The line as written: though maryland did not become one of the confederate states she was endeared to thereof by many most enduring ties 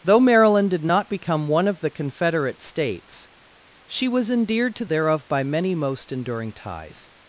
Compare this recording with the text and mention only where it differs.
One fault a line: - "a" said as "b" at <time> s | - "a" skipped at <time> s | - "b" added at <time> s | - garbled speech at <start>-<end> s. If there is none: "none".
none